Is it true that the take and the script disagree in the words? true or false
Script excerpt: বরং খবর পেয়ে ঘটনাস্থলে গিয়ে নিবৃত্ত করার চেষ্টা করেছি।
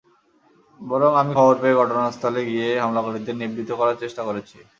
true